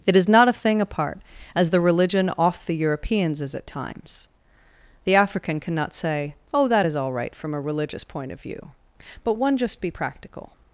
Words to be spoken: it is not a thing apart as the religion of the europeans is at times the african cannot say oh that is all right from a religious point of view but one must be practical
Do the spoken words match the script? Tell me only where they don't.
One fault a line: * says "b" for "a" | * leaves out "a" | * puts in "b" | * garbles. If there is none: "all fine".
* says "off" for "of"
* says "just" for "must"